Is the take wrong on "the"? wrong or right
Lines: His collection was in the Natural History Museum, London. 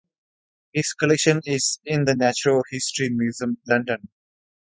right